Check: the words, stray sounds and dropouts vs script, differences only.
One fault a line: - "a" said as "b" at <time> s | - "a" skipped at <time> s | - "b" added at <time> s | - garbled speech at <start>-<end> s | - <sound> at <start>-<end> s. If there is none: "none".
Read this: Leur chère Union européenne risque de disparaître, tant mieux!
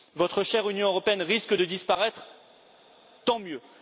- "Leur" said as "Votre" at 0.1 s